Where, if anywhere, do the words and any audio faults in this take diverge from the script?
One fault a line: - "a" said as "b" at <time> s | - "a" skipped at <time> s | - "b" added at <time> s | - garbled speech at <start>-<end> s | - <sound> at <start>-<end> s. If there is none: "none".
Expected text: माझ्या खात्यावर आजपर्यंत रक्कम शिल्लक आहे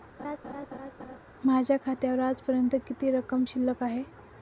- laugh at 0.2-1.2 s
- "किती" added at 2.9 s